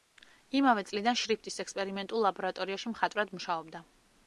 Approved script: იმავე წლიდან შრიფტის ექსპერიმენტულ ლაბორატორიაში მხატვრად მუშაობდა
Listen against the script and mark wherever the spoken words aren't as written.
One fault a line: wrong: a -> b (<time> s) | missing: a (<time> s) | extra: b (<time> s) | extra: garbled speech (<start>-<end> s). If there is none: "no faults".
no faults